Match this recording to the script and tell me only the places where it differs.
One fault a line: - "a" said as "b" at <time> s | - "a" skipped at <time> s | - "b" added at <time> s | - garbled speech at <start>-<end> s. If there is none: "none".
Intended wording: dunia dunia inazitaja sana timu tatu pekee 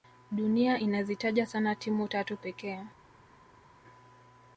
- "dunia" skipped at 0.8 s